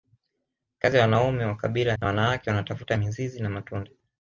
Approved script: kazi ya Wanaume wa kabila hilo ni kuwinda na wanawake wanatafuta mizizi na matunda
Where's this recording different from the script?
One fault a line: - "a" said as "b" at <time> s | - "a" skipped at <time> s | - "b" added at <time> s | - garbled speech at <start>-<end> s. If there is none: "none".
- "hilo ni kuwinda" skipped at 1.9 s